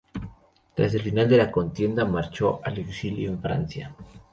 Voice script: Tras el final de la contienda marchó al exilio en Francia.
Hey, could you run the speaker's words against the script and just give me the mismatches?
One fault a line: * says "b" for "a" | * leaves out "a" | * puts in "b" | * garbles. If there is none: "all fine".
all fine